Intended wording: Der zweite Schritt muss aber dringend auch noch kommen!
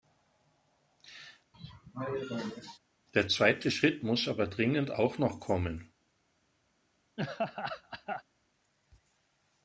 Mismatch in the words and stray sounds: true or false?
true